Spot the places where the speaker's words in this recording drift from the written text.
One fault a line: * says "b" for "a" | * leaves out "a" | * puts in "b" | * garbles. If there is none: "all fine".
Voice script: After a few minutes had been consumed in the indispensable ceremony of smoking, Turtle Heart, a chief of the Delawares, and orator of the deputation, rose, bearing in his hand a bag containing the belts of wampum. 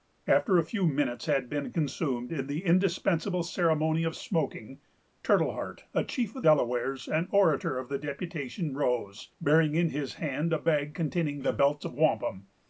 * leaves out "the"